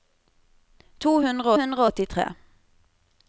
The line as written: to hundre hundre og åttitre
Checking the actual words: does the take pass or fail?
pass